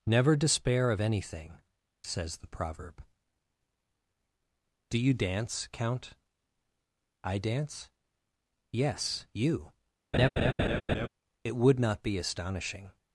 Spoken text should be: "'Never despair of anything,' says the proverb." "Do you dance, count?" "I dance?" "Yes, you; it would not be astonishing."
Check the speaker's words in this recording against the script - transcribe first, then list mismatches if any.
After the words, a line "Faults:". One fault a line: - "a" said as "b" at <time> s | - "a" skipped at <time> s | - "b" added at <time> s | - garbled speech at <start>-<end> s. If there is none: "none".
"'Never despair of anything,' says the proverb." "Do you dance, count?" "I dance?" "Yes, you; it would not be astonishing."
Faults:
none